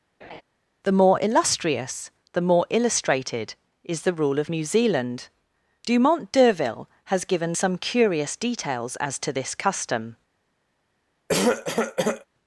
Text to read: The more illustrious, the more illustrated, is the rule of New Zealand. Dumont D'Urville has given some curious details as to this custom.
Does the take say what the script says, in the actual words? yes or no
yes